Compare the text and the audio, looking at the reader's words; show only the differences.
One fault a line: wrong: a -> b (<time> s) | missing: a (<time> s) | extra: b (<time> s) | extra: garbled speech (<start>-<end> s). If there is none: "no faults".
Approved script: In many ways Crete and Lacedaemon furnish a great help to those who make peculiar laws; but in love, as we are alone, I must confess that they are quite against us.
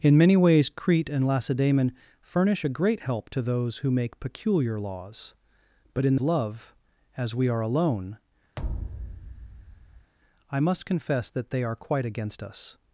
no faults